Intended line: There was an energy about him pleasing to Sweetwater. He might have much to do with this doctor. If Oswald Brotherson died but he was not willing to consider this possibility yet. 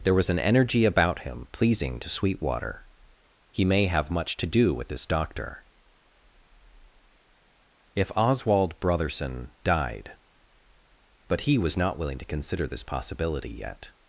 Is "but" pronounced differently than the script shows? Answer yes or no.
no